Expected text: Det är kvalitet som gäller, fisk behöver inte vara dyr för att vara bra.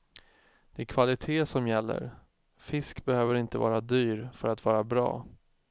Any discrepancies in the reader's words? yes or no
no